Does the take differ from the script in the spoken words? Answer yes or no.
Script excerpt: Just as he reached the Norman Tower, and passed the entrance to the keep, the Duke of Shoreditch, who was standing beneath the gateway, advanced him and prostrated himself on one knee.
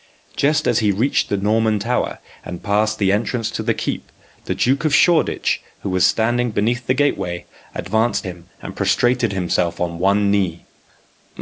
no